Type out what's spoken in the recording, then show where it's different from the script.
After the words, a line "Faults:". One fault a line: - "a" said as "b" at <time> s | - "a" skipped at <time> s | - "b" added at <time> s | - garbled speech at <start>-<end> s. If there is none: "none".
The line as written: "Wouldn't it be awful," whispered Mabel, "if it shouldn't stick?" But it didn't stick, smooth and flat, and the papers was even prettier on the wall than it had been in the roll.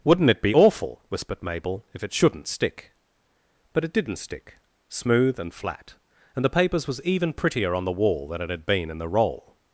"Wouldn't it be awful," whispered Mabel, "if it shouldn't stick?" But it didn't stick, smooth and flat, and the papers was even prettier on the wall than it had been in the roll.
Faults:
none